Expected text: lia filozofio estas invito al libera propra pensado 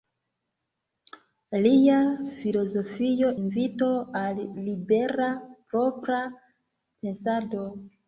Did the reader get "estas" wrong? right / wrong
wrong